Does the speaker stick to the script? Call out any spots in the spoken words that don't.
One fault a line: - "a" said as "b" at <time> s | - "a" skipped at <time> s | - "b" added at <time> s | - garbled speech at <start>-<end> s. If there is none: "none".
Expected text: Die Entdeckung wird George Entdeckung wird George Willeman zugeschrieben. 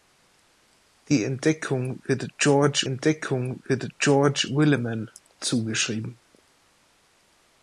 none